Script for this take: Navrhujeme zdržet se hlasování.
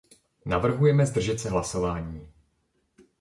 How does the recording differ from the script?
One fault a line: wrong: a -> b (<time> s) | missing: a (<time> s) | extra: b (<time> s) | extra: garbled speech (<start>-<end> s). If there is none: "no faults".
no faults